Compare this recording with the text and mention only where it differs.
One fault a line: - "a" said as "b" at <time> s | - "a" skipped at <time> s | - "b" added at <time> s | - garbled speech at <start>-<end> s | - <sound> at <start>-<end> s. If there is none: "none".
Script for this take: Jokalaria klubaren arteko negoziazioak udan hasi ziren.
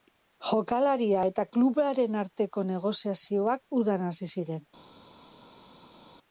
- "eta" added at 1.3 s